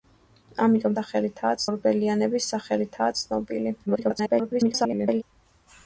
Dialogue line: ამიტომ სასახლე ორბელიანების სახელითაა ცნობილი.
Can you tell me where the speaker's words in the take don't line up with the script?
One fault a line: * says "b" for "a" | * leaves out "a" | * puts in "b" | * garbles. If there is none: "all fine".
* says "სახელითაა" for "სასახლე"
* garbles